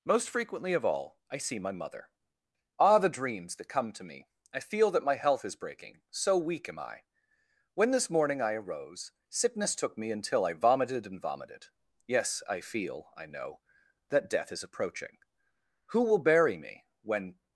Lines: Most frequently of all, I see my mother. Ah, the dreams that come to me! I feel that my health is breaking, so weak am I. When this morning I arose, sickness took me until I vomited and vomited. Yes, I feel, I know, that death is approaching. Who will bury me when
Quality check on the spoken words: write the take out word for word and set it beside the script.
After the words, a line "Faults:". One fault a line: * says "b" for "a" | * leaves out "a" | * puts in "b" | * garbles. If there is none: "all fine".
Most frequently of all, I see my mother. Ah, the dreams that come to me! I feel that my health is breaking, so weak am I. When this morning I arose, sickness took me until I vomited and vomited. Yes, I feel, I know, that death is approaching. Who will bury me when
Faults:
all fine